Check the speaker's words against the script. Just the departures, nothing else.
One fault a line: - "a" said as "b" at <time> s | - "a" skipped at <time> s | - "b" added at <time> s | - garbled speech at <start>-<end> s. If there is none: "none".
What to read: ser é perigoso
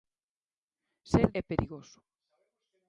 none